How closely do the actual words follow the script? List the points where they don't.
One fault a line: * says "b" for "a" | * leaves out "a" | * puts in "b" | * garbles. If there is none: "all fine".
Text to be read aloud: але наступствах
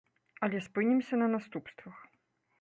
* puts in "спынімся на"